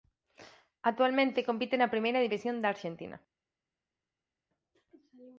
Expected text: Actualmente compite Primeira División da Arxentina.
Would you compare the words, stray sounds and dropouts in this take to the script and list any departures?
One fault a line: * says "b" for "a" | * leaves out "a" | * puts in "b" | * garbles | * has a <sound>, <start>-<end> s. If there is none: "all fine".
* puts in "na"